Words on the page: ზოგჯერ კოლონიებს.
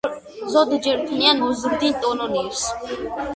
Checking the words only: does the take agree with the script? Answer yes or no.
no